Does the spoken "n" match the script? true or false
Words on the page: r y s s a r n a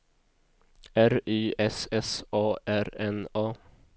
true